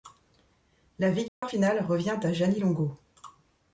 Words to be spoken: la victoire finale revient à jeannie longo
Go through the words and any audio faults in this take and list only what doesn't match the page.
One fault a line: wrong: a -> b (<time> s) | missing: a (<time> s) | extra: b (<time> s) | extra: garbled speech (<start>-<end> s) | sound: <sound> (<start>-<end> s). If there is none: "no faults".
sound: dropout (1.3-1.4 s)